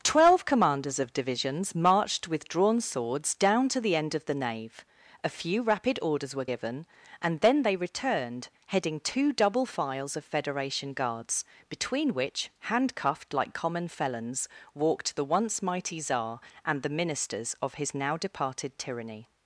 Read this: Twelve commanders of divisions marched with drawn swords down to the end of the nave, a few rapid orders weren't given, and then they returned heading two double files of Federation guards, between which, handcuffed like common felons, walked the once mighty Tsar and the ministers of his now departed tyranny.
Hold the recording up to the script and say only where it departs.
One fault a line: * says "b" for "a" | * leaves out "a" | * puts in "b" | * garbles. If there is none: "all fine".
* says "were" for "weren't"